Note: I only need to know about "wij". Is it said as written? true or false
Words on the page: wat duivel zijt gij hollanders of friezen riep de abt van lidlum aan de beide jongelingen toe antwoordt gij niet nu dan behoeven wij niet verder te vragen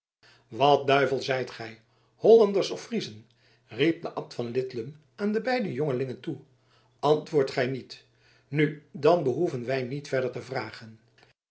true